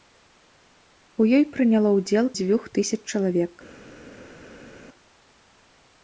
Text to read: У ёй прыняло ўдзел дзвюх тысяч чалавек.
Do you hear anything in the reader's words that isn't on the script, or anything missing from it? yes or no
no